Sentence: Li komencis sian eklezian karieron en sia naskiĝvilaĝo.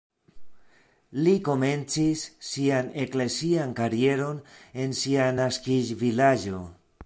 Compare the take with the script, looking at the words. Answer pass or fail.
pass